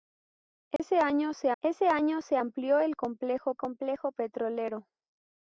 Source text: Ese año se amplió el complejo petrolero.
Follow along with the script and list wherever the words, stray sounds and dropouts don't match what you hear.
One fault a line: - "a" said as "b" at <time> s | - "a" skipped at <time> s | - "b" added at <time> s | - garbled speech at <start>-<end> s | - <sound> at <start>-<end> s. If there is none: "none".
- dropout at 0.8-0.8 s
- "ese año se" added at 1.6 s
- "complejo" added at 3.6 s